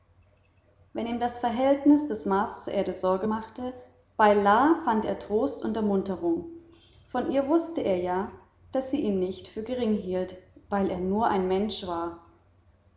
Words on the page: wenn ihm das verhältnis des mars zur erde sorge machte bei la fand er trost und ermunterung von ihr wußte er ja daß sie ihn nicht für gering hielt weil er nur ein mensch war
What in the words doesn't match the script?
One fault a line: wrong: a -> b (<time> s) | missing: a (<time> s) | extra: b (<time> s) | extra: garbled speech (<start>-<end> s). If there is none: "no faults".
no faults